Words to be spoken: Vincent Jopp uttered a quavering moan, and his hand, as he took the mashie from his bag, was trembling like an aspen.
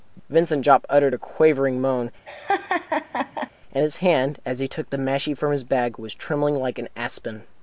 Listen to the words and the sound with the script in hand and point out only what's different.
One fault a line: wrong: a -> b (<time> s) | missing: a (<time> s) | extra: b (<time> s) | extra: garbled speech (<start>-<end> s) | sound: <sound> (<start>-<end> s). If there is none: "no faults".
sound: laugh (2.3-3.5 s)